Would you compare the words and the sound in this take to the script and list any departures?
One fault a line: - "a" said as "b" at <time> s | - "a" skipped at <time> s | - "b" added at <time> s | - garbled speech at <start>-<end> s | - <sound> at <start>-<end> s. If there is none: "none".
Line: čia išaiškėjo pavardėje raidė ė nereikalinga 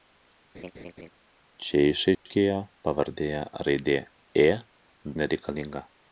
- laugh at 0.5-1.1 s
- dropout at 2.1-2.3 s